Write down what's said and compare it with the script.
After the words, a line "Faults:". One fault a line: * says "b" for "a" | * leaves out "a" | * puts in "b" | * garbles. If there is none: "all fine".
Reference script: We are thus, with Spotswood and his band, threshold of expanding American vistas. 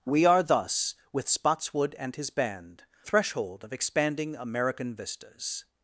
We are thus, with Spotswood and his band, threshold of expanding American vistas.
Faults:
all fine